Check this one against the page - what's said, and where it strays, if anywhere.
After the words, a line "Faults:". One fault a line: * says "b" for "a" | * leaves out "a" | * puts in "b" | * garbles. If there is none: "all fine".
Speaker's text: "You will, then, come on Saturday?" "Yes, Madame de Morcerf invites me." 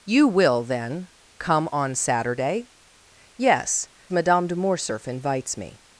"You will, then, come on Saturday?" "Yes, Madame de Morcerf invites me."
Faults:
all fine